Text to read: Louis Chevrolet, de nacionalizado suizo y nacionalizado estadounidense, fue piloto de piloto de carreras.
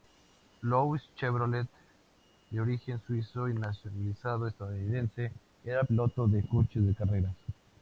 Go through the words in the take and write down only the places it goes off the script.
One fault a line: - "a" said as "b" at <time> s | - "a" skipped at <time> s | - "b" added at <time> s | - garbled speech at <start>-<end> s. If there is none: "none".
- "nacionalizado" said as "origen" at 2.6 s
- "fue" said as "era" at 5.6 s
- "piloto" said as "coches" at 6.4 s